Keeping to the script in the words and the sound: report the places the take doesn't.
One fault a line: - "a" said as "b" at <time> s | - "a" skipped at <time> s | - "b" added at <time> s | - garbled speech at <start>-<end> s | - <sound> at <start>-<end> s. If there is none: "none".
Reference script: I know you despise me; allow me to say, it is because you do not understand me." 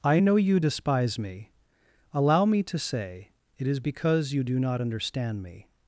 none